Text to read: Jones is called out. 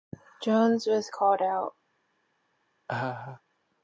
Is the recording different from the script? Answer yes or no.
yes